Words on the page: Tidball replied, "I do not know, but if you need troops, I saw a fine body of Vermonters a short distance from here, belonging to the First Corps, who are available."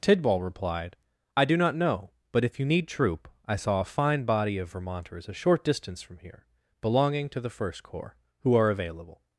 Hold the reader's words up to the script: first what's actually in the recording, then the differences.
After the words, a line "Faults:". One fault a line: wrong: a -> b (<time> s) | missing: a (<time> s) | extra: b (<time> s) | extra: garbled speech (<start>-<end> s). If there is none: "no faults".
Tidball replied, "I do not know, but if you need troop, I saw a fine body of Vermonters a short distance from here, belonging to the First Corps, who are available."
Faults:
wrong: troops -> troop (2.9 s)